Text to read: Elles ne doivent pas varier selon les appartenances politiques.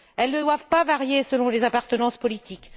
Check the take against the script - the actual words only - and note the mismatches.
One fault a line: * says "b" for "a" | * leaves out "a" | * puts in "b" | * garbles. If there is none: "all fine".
all fine